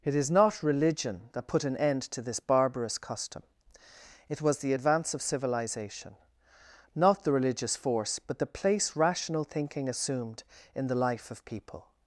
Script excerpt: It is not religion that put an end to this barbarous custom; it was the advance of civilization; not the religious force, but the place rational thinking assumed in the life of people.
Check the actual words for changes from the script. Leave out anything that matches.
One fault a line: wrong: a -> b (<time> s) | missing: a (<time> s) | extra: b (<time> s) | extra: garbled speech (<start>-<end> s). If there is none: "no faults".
no faults